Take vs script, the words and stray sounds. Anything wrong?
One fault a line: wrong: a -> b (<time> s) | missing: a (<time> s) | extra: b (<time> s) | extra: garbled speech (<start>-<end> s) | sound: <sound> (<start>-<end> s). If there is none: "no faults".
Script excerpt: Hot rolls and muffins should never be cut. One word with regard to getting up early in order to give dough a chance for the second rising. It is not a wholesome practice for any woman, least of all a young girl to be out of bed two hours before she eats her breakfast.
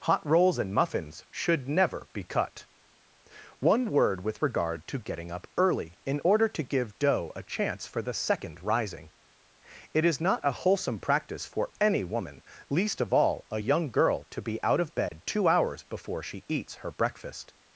sound: dropout (15.1-15.1 s)